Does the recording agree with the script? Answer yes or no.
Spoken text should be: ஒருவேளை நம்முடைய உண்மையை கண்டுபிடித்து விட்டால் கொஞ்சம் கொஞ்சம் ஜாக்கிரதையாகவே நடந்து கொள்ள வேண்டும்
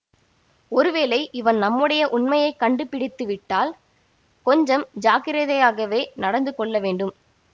no